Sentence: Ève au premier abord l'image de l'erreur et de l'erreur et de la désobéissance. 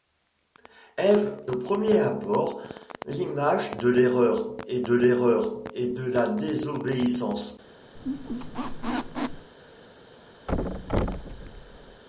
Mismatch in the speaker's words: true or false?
false